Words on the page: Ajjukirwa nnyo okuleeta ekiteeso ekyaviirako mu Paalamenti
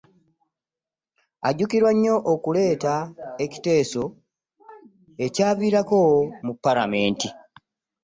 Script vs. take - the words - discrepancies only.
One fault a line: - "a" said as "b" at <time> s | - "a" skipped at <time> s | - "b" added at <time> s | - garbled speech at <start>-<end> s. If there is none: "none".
none